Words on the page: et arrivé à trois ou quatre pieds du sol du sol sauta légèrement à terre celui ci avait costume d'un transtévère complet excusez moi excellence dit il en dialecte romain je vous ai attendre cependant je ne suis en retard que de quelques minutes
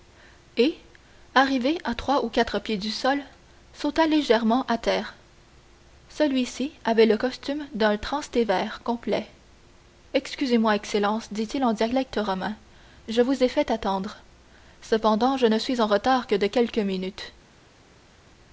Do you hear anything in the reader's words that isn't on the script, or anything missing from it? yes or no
yes